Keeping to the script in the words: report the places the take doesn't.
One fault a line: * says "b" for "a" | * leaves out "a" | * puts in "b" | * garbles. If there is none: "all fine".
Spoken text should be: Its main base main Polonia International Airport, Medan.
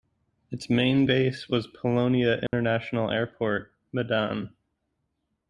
* says "was" for "main"